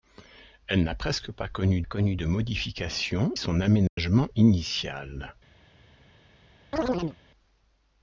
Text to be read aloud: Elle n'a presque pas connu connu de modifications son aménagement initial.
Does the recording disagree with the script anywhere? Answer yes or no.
no